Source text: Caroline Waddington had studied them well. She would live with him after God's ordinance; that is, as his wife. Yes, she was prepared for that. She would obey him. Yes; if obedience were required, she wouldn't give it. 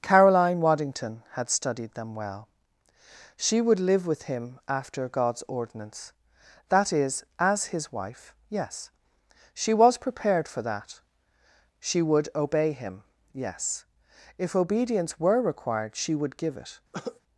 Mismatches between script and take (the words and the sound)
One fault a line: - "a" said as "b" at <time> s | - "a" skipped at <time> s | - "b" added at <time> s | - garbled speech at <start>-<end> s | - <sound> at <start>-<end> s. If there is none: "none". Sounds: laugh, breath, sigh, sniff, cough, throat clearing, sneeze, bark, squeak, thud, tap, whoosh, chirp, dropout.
- "wouldn't" said as "would" at 16.1 s
- cough at 16.9-17.2 s